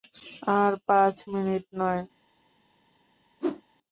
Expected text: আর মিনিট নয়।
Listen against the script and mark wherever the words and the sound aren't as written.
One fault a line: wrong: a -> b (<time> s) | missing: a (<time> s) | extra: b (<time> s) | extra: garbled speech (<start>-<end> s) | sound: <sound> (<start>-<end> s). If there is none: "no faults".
extra: পাঁচ (0.9 s)
sound: whoosh (3.4-3.6 s)